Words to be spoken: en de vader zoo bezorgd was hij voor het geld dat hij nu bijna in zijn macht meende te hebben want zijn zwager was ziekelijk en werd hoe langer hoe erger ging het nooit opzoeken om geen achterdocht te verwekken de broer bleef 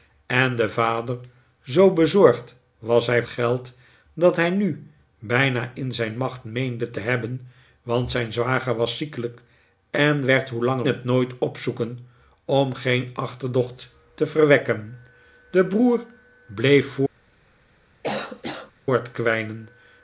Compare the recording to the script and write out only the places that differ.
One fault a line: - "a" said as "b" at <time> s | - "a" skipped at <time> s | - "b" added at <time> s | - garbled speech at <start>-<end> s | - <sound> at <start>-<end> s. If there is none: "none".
- "voor het" skipped at 3.2 s
- "hoe erger ging" skipped at 10.9 s
- cough at 18.0-18.7 s